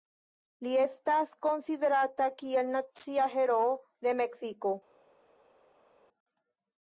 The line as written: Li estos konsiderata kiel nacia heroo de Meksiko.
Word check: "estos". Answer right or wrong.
wrong